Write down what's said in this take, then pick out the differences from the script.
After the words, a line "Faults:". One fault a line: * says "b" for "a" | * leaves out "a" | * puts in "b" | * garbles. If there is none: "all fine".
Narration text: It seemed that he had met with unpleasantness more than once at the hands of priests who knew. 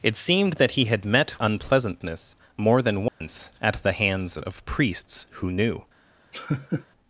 It seemed that he had met unpleasantness more than once at the hands of priests who knew.
Faults:
* leaves out "with"